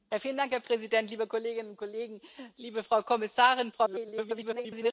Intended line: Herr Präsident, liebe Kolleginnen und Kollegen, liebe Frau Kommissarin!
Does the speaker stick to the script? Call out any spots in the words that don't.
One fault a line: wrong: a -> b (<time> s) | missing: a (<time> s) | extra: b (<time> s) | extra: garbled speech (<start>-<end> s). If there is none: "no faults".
extra: garbled speech (3.7-4.9 s)